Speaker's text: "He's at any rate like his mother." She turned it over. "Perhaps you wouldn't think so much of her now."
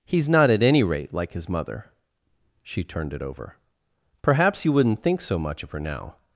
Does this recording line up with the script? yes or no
no